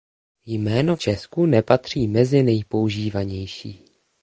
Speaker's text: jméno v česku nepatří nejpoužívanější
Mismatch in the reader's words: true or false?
true